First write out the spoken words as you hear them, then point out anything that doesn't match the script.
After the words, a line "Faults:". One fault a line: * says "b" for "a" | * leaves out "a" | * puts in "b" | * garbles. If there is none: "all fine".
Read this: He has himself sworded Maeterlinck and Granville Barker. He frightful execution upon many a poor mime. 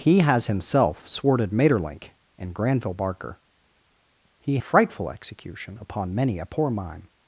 He has himself sworded Maeterlinck and Granville Barker. He frightful execution upon many a poor mime.
Faults:
all fine